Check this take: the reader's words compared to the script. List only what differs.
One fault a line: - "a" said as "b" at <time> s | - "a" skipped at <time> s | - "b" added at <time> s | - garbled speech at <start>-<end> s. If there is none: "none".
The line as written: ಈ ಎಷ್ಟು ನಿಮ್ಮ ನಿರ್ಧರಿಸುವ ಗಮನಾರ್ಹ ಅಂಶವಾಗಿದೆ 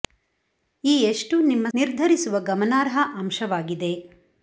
none